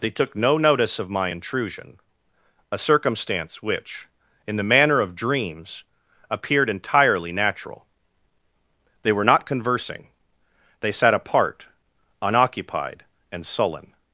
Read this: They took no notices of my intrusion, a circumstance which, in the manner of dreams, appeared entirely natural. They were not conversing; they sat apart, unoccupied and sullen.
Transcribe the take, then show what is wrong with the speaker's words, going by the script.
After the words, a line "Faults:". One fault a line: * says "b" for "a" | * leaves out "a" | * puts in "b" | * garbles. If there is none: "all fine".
They took no notice of my intrusion, a circumstance which, in the manner of dreams, appeared entirely natural. They were not conversing; they sat apart, unoccupied and sullen.
Faults:
* says "notice" for "notices"